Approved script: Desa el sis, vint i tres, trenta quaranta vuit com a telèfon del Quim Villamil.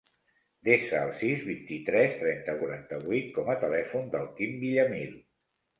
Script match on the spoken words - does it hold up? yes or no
yes